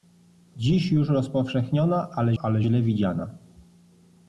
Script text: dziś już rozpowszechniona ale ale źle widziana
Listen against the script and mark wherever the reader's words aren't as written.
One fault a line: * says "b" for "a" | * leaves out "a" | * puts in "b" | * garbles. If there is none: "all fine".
all fine